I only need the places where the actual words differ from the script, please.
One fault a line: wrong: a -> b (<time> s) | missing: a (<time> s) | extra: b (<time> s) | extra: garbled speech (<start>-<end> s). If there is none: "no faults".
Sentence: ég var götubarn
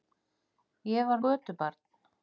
no faults